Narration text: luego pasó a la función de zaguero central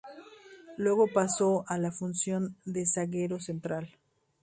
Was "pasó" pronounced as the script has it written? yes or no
yes